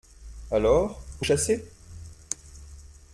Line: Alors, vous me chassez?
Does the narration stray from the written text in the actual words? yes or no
yes